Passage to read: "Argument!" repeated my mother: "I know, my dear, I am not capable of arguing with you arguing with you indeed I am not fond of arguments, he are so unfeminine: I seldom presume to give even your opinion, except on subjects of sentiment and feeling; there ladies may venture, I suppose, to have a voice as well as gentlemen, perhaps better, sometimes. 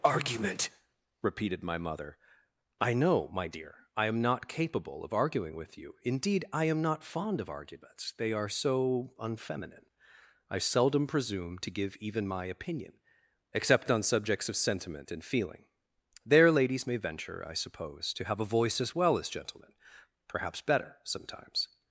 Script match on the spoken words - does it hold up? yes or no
no